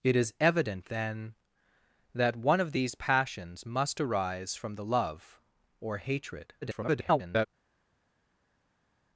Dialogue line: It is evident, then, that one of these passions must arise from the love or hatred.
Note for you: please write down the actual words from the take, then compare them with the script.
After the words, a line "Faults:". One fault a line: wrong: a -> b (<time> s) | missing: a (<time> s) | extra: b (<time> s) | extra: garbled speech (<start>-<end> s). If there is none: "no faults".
It is evident, then, that one of these passions must arise from the love or hatred. [garbled]
Faults:
extra: garbled speech (6.6-7.5 s)